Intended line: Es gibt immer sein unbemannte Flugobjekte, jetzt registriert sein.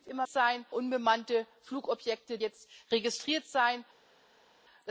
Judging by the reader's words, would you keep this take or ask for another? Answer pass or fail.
pass